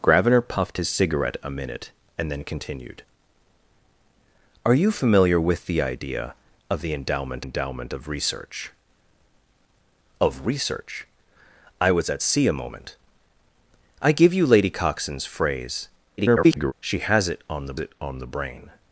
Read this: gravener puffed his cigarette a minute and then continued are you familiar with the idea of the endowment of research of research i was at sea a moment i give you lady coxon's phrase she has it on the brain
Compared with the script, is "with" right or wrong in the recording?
right